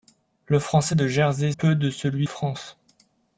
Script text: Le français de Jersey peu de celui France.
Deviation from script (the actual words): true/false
false